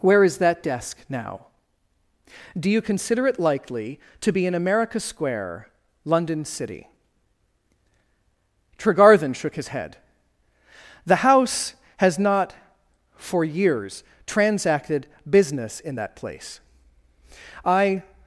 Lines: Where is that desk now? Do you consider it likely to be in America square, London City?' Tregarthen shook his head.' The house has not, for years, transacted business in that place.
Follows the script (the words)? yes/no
no